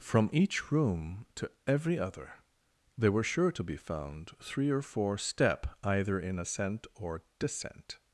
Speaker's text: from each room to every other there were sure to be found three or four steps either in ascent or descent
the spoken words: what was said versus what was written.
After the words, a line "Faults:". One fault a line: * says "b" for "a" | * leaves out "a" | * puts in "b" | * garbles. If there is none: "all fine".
from each room to every other there were sure to be found three or four step either in ascent or descent
Faults:
* says "step" for "steps"